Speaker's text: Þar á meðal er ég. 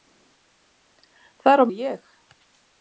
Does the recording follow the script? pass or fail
fail